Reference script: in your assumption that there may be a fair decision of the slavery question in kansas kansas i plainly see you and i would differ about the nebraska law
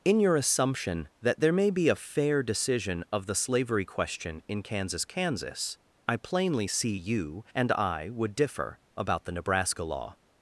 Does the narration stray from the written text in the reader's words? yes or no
no